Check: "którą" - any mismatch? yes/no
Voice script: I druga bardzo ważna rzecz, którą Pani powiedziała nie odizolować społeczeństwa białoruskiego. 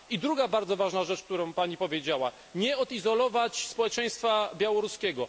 no